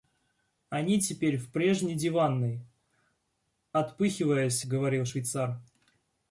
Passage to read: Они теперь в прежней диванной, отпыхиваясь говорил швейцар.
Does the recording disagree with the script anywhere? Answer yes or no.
no